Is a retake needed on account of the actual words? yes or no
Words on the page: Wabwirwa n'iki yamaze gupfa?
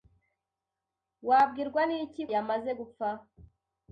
no